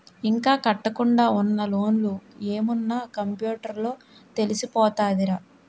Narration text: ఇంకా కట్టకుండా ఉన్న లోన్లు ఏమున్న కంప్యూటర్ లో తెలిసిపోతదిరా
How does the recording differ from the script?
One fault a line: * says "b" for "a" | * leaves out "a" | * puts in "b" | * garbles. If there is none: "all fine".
all fine